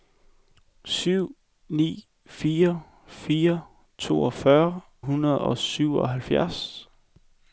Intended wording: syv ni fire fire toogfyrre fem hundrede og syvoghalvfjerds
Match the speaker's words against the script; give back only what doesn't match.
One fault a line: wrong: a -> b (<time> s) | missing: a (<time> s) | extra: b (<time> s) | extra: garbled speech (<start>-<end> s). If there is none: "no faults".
missing: fem (4.8 s)